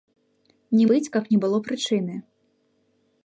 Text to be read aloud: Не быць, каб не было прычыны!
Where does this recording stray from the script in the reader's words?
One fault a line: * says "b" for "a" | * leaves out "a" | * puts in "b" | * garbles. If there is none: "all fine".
all fine